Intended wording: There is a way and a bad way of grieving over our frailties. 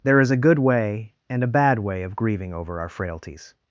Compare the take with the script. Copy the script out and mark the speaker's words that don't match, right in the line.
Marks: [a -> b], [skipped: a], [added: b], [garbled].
There is a [added: good] way and a bad way of grieving over our frailties.